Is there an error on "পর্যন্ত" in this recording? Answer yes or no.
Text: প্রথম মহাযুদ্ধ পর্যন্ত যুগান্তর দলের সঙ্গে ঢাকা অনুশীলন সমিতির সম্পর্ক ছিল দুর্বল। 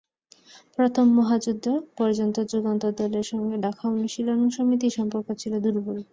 no